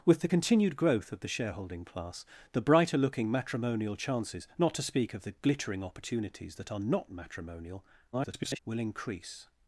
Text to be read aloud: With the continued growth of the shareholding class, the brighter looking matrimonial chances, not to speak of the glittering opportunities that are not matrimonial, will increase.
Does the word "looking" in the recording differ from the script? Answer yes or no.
no